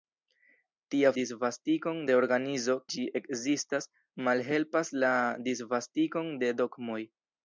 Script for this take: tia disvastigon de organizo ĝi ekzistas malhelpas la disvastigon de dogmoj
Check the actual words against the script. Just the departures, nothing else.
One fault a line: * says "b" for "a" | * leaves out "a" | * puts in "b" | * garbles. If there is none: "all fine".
all fine